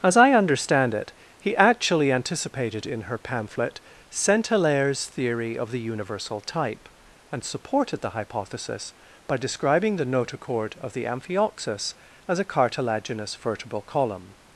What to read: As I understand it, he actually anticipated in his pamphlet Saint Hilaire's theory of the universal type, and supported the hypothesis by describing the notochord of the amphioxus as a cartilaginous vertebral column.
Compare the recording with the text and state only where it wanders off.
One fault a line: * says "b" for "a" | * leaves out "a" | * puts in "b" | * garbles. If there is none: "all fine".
* says "her" for "his"